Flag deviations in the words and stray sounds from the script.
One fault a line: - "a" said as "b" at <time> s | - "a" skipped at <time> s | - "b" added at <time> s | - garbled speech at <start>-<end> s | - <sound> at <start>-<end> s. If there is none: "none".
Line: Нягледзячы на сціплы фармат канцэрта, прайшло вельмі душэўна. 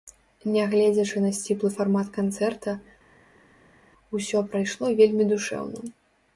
- "усё" added at 4.2 s